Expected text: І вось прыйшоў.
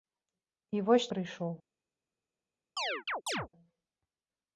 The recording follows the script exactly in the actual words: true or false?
true